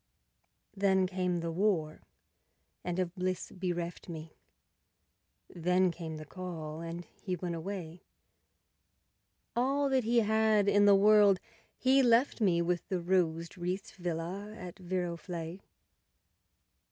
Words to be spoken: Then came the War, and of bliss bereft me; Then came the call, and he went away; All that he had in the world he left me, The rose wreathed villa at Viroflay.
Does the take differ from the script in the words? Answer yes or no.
yes